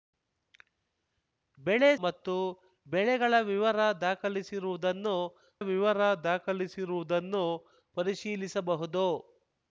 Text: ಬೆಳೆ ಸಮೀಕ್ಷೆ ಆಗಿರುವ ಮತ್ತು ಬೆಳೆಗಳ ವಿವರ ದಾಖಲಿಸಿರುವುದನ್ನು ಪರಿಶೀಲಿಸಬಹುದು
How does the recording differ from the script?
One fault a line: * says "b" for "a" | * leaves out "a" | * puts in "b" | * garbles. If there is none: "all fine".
* says "ಮತ್ತು ಬೆಳೆಗಳ ವಿವರ ದಾಖಲಿಸಿರುವುದನ್ನು" for "ಸಮೀಕ್ಷೆ ಆಗಿರುವ ಮತ್ತು ಬೆಳೆಗಳ"